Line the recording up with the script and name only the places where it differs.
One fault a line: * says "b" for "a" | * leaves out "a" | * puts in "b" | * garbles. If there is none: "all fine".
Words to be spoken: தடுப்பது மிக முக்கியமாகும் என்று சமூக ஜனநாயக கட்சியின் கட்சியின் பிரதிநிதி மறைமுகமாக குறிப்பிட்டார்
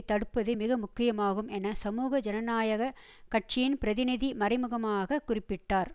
* says "என" for "என்று"
* leaves out "கட்சியின்"